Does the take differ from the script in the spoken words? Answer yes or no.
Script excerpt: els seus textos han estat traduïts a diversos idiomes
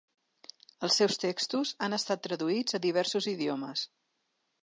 no